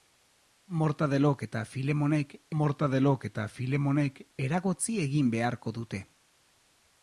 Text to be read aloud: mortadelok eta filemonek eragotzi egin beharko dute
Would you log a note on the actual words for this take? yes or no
yes